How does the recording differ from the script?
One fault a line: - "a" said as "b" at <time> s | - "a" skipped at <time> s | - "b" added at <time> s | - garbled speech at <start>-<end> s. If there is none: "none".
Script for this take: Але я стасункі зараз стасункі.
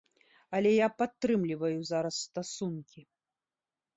- "стасункі" said as "падтрымліваю" at 1.0 s